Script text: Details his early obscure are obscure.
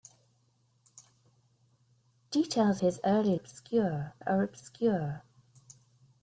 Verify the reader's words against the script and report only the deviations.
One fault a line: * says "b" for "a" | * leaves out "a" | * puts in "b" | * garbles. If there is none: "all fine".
all fine